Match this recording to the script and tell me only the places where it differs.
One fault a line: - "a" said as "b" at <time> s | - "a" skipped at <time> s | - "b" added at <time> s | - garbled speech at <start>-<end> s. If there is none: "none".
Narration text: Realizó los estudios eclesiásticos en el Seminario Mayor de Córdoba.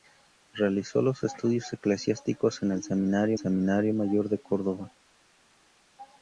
- "Seminario" added at 3.4 s